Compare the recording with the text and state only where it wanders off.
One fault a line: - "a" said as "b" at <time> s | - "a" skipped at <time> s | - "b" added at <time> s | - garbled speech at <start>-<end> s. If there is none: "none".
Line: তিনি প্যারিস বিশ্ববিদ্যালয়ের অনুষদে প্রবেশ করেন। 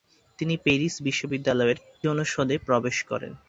none